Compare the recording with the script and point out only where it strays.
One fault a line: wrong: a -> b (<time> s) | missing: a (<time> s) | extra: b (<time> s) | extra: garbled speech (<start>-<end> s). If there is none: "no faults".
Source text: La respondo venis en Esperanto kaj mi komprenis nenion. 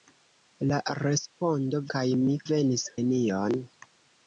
missing: venis en Esperanto (1.8 s)
wrong: komprenis -> venis (2.5 s)